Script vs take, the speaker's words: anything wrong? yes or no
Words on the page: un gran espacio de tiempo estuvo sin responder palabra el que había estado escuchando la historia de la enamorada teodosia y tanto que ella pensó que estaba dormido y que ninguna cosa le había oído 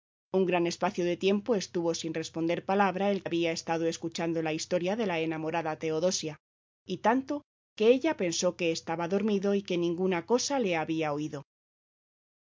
yes